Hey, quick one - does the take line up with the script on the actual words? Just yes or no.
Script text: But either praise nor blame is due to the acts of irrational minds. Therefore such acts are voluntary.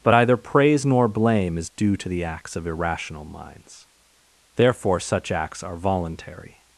yes